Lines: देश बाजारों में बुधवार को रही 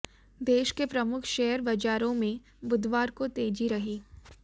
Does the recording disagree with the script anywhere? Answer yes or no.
yes